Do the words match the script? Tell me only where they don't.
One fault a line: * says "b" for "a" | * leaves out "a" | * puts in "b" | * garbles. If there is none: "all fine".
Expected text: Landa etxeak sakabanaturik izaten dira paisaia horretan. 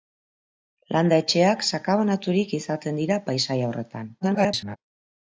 * garbles